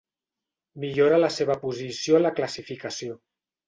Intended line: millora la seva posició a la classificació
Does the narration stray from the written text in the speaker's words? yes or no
no